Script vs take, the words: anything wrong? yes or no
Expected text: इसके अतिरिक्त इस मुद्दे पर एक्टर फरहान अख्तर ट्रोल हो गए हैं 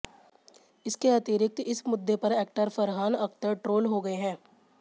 no